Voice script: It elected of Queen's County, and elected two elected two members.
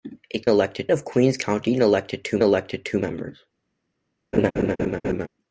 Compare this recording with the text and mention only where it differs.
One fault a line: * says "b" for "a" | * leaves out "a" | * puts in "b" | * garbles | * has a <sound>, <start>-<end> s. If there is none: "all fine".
* has a laugh, 4.3-5.3 s